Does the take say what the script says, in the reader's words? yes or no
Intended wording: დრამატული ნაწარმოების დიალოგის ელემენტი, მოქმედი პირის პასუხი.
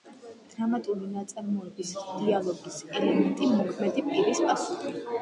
yes